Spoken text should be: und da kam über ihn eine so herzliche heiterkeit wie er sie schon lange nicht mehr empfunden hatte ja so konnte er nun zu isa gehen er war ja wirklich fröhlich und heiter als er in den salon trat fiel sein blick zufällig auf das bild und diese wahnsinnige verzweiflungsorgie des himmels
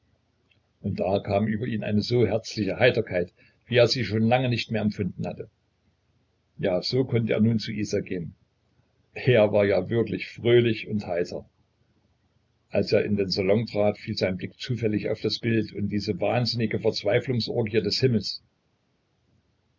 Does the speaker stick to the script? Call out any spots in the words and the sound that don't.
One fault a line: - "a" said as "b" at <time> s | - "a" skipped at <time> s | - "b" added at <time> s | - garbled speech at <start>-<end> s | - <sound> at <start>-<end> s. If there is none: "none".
none